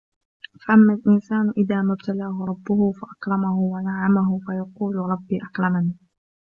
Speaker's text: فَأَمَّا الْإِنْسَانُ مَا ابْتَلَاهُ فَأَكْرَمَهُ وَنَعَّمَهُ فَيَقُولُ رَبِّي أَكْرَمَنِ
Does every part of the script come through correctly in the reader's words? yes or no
no